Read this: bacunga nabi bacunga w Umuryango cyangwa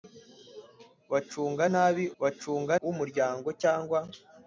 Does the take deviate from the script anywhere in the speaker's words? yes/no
no